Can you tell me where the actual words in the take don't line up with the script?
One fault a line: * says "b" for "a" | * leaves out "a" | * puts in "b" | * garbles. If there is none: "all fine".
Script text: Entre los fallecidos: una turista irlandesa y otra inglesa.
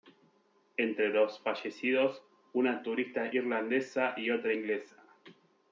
all fine